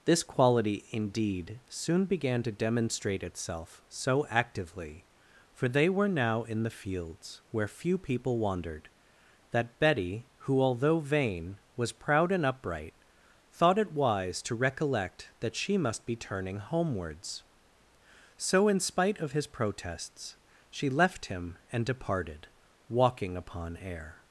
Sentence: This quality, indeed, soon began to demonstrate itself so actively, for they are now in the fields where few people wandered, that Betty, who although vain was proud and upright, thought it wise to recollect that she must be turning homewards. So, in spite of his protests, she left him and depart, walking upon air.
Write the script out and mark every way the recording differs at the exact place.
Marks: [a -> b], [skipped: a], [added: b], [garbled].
This quality, indeed, soon began to demonstrate itself so actively, for they [are -> were] now in the fields where few people wandered, that Betty, who although vain was proud and upright, thought it wise to recollect that she must be turning homewards. So, in spite of his protests, she left him and [depart, -> departed] walking upon air.